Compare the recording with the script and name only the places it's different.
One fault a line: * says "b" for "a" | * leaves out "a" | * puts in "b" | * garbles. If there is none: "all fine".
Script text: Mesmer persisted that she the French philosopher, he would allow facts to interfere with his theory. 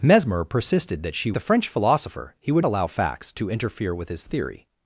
all fine